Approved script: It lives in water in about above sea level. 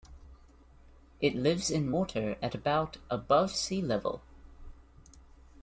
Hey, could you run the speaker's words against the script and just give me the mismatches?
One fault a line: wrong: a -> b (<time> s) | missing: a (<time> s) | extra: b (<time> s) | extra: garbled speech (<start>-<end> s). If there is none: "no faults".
wrong: in -> at (2.4 s)